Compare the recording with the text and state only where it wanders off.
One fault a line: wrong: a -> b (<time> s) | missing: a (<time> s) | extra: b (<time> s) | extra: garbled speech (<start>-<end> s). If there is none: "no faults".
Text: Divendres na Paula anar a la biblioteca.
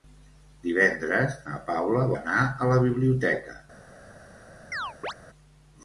no faults